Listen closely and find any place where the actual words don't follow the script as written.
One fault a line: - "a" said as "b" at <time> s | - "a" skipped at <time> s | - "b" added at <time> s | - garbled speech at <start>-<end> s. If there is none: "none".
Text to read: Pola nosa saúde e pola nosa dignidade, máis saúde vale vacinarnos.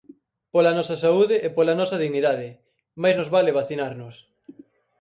- "saúde" said as "nos" at 3.2 s